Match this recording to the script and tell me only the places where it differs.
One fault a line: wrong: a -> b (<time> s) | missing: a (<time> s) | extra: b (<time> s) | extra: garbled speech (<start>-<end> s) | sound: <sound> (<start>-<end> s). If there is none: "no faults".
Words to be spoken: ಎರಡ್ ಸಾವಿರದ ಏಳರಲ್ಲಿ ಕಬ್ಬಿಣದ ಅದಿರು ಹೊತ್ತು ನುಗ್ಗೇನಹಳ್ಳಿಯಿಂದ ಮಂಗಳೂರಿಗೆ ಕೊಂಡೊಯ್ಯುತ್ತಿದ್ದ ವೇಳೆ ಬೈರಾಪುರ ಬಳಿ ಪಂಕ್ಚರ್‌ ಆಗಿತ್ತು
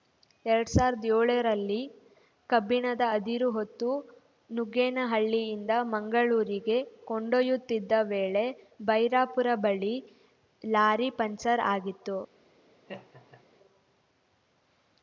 extra: ಲಾರಿ (10.6 s)
sound: laugh (12.9-13.4 s)